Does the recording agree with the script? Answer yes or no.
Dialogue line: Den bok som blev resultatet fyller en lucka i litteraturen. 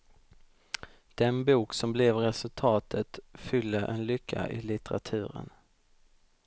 yes